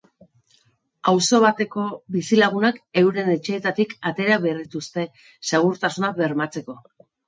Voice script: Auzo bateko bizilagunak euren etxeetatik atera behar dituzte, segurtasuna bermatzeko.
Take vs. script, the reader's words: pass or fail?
pass